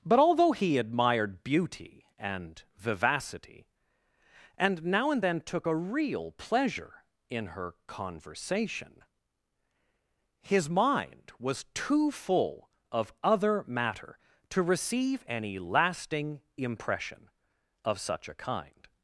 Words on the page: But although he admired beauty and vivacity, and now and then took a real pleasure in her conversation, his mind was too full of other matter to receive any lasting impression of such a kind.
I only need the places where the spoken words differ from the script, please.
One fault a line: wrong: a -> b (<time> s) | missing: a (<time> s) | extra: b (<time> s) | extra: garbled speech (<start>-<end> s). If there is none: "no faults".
no faults